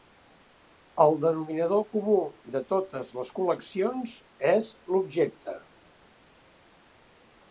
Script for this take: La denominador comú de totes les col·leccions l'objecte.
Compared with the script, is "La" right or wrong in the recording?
wrong